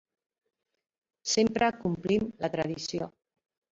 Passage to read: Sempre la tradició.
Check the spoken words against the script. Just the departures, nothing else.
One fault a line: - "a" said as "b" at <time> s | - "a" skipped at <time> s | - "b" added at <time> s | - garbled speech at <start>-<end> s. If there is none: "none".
- "complim" added at 1.8 s